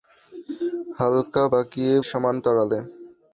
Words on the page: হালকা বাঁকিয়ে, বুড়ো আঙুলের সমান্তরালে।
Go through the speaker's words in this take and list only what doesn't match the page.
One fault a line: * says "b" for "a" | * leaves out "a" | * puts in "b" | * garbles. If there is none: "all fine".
* leaves out "বুড়ো আঙুলের"